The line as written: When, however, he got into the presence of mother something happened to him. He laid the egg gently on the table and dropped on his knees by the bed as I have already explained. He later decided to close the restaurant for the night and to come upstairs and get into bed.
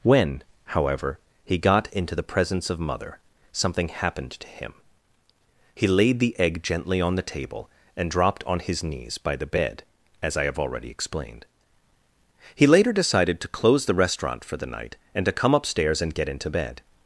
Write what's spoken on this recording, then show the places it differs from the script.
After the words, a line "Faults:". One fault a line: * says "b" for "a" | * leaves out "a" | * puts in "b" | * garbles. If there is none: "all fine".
When, however, he got into the presence of mother something happened to him. He laid the egg gently on the table and dropped on his knees by the bed as I have already explained. He later decided to close the restaurant for the night and to come upstairs and get into bed.
Faults:
all fine